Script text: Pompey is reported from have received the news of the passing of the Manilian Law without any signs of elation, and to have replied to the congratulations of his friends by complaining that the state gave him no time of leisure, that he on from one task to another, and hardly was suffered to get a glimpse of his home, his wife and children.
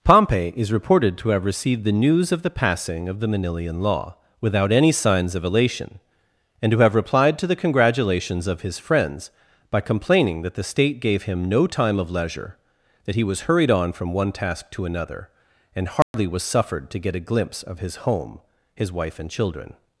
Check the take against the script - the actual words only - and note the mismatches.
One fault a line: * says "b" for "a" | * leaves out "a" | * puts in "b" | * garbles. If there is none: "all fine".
* says "to" for "from"
* puts in "was hurried"